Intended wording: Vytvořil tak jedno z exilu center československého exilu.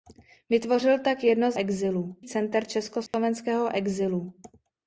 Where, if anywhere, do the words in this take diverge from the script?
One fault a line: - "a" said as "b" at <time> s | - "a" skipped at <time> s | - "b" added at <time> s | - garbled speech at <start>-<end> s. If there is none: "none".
none